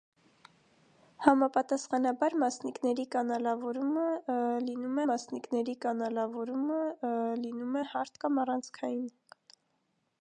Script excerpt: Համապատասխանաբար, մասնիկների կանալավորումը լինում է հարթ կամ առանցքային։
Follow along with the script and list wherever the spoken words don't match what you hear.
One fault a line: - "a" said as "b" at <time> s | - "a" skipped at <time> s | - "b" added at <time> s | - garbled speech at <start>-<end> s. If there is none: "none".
- "մասնիկների կանալավորումը լինում" added at 5.1 s